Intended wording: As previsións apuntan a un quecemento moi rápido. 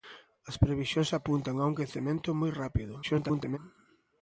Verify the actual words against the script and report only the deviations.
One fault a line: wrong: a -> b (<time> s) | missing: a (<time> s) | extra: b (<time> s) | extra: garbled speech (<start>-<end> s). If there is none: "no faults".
extra: garbled speech (3.0-3.6 s)